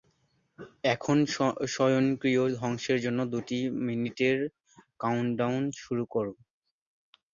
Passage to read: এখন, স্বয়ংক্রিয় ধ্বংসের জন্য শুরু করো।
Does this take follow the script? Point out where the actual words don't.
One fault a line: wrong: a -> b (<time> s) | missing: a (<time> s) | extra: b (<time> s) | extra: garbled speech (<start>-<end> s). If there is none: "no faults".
extra: দুই মিনিটের কাউন্টডাউন (3.3 s)